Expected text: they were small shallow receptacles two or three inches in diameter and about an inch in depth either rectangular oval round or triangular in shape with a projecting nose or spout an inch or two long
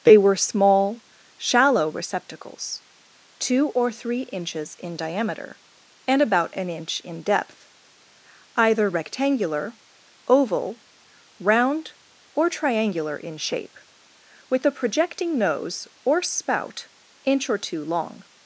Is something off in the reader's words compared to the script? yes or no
yes